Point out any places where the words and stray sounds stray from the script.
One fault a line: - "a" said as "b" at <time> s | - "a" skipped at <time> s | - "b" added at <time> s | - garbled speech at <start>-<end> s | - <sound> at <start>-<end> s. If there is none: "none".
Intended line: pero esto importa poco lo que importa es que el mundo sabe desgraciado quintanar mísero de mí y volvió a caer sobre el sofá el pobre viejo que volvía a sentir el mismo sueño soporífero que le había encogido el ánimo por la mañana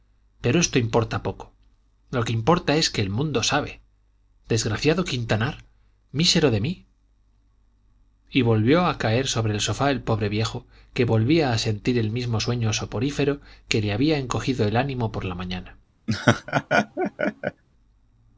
- laugh at 16.1-17.6 s